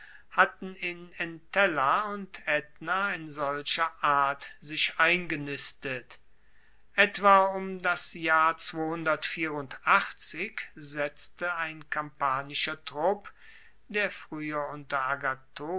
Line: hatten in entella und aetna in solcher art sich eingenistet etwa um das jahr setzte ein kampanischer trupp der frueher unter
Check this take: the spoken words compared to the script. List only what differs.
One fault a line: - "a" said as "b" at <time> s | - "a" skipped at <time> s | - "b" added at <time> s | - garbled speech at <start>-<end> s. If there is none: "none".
none